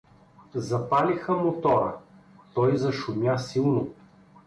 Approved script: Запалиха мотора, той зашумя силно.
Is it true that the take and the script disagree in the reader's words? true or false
false